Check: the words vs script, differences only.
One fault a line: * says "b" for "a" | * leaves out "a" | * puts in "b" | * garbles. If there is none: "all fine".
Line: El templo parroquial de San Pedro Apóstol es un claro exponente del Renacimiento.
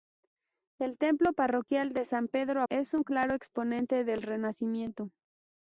* leaves out "Apóstol"